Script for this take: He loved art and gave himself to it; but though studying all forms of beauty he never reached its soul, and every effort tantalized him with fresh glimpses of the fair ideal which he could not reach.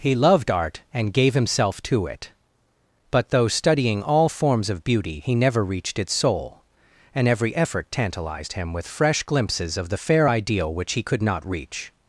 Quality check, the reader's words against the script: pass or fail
pass